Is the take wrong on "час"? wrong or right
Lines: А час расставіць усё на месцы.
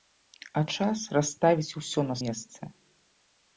right